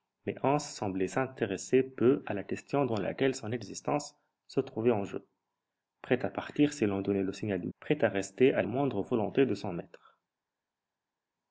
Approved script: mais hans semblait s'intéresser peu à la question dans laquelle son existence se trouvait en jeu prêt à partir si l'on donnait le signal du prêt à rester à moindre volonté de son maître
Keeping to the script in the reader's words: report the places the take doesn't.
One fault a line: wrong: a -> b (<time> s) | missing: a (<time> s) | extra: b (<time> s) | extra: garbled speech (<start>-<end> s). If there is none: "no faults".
no faults